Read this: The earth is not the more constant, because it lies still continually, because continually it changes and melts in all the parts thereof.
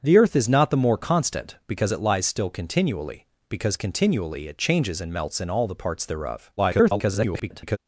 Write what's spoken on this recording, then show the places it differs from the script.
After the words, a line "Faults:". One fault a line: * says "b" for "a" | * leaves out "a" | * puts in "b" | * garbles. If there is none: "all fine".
The earth is not the more constant, because it lies still continually, because continually it changes and melts in all the parts thereof. [garbled]
Faults:
* garbles